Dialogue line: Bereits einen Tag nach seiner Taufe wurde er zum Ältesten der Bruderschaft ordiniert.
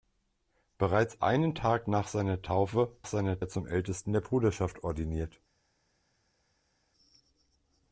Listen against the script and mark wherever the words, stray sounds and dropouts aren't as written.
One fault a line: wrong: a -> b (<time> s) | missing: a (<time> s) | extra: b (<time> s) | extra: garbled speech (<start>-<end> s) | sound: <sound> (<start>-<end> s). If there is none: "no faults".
wrong: wurde -> seiner (3.1 s)